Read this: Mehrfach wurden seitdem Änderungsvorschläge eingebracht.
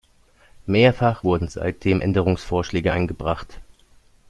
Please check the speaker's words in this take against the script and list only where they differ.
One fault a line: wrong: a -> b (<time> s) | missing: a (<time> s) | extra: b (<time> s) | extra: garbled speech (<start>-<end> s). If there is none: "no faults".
no faults